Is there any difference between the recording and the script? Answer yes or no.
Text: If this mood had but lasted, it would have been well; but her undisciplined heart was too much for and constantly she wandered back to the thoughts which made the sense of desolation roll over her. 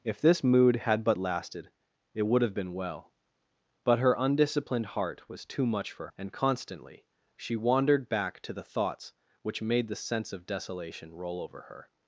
no